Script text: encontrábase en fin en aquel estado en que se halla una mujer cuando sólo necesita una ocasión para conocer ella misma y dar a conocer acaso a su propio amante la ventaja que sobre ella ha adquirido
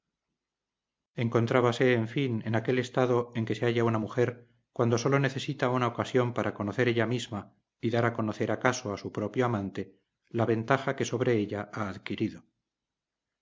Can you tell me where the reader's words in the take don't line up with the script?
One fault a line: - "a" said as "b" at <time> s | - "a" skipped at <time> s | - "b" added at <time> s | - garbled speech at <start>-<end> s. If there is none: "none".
none